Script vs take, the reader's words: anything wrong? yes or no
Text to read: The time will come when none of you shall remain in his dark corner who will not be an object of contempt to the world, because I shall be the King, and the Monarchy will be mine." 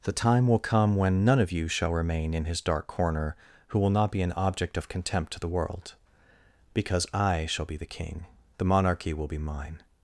yes